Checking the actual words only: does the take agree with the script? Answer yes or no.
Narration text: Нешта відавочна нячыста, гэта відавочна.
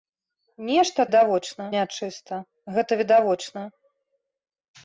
yes